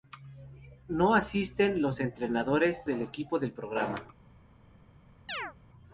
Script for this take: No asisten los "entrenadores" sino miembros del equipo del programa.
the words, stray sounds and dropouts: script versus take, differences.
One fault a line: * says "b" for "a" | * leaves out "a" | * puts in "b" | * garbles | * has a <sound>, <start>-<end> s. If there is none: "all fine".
* leaves out "sino miembros"
* has a chirp, 5.3-5.5 s